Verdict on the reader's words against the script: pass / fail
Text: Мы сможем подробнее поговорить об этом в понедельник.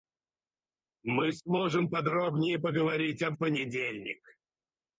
fail